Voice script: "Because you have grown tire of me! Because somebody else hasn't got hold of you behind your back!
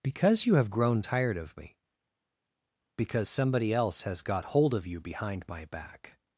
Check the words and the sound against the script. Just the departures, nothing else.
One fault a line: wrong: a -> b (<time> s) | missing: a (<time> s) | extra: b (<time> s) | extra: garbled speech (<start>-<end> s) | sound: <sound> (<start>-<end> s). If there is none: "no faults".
wrong: tire -> tired (1.0 s)
wrong: hasn't -> has (4.0 s)
wrong: your -> my (5.5 s)